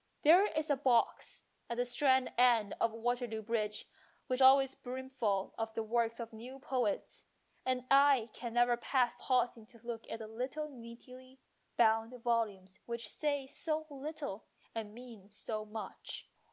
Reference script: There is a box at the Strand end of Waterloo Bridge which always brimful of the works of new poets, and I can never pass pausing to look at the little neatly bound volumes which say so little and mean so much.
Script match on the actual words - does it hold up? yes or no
yes